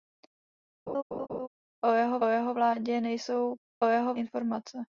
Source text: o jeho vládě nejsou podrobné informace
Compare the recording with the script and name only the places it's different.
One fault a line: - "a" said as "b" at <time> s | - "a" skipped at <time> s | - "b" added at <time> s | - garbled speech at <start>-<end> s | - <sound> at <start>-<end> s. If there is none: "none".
- laugh at 0.9-1.5 s
- "jeho" added at 2.3 s
- "podrobné" said as "jeho" at 3.9 s